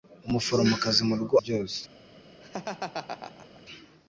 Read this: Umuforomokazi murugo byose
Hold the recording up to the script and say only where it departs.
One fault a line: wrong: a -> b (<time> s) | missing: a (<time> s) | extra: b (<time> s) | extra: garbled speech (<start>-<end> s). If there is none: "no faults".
no faults